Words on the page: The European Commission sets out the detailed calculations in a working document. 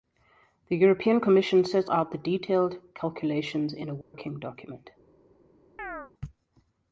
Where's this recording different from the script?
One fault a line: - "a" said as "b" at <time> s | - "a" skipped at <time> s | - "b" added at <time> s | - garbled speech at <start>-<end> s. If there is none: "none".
none